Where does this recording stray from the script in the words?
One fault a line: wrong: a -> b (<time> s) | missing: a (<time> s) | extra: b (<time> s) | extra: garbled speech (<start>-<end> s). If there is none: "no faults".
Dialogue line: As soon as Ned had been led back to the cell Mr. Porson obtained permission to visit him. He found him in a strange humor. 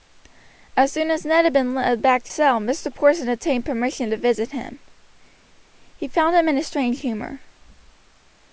missing: the (2.3 s)